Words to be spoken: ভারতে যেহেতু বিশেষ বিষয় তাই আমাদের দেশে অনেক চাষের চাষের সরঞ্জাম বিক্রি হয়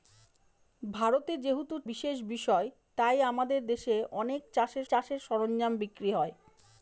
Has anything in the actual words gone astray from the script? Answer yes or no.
no